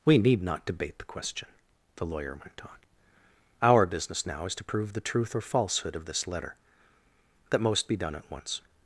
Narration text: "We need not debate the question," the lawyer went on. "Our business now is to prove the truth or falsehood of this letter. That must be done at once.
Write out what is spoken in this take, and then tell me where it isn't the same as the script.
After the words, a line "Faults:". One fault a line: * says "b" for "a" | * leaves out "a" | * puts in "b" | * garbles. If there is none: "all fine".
"We need not debate the question," the lawyer went on. "Our business now is to prove the truth or falsehood of this letter. That most be done at once.
Faults:
* says "most" for "must"